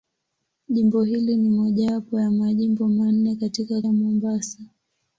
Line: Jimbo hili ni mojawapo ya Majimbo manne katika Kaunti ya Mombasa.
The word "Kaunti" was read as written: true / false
false